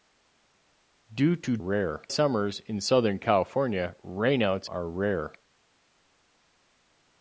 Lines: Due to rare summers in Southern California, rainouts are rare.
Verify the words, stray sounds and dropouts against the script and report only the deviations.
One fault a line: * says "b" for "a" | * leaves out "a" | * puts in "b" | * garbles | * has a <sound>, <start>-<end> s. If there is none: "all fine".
all fine